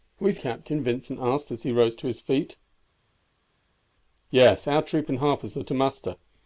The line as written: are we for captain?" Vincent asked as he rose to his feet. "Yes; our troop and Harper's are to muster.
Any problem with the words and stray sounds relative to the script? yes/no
no